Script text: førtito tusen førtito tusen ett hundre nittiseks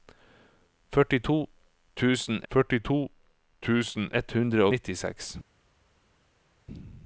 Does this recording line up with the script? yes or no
yes